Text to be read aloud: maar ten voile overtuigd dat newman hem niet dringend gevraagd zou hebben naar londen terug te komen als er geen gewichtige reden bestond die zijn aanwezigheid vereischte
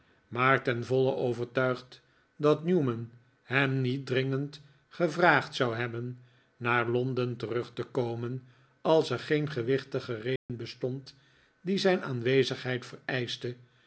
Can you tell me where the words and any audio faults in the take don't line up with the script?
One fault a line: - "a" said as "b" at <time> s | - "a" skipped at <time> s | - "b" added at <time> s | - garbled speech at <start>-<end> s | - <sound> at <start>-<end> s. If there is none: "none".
- dropout at 10.4-10.5 s